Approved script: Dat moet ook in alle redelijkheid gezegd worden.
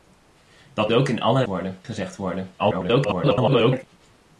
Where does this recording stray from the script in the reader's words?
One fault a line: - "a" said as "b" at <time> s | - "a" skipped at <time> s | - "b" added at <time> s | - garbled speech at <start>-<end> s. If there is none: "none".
- "moet" skipped at 0.9 s
- "redelijkheid" said as "worden" at 1.4 s
- garbled speech at 2.6-3.8 s